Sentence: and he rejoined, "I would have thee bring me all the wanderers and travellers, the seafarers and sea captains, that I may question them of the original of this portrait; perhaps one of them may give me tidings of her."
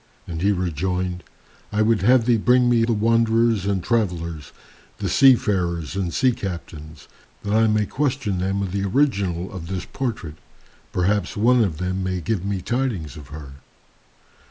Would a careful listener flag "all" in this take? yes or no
yes